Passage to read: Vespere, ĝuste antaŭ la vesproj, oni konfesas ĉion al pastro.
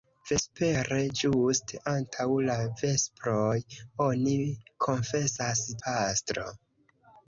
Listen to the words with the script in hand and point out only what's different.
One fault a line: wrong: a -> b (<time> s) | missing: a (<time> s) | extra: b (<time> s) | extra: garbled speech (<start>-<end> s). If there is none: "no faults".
missing: ĉion al (5.6 s)